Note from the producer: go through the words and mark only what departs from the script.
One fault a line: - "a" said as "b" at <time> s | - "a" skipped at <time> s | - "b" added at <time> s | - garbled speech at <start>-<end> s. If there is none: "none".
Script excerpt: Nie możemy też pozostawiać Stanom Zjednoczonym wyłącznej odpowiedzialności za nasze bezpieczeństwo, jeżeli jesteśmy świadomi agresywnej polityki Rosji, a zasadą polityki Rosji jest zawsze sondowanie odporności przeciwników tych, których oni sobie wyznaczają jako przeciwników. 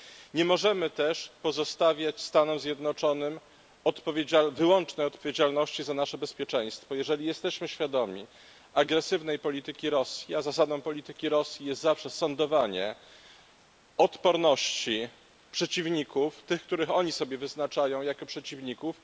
none